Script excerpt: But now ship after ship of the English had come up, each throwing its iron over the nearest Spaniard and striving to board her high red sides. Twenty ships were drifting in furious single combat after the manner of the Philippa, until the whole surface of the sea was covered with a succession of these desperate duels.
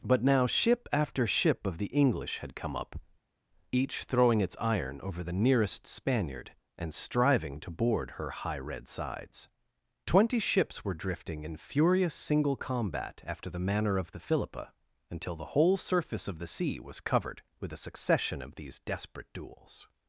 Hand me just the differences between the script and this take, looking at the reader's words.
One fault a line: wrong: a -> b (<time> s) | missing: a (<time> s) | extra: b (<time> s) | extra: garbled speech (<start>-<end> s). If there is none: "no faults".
no faults